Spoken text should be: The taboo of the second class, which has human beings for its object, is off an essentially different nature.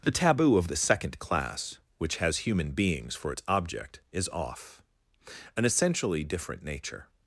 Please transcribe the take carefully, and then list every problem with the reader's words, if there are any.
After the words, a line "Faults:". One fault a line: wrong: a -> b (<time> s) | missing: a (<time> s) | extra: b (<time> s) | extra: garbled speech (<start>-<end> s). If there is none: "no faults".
The taboo of the second class, which has human beings for its object, is off an essentially different nature.
Faults:
no faults